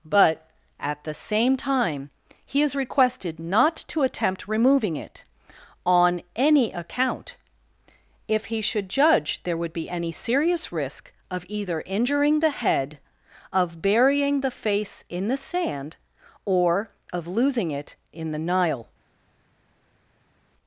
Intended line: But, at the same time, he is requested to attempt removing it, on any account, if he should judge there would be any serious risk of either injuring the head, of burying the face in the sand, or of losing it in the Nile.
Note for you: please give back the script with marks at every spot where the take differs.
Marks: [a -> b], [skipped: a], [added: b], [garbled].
But, at the same time, he is requested [added: not] to attempt removing it, on any account, if he should judge there would be any serious risk of either injuring the head, of burying the face in the sand, or of losing it in the Nile.